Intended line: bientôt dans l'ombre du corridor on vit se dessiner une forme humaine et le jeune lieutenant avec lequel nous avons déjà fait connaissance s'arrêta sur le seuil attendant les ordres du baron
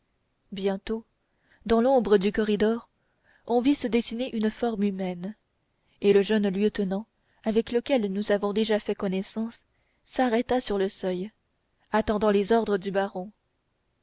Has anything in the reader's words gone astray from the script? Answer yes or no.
no